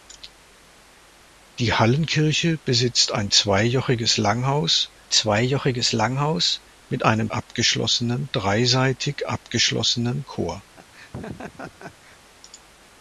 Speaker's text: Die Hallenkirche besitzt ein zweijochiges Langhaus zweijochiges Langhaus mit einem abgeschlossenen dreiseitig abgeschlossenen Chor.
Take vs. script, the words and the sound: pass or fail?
fail